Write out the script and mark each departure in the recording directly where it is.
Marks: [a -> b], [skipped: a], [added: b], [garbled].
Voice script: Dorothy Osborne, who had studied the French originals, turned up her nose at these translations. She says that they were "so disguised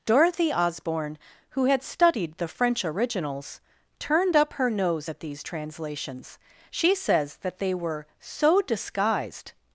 Dorothy Osborne, who had studied the French originals, turned up her nose at these translations. She says that they were "so disguised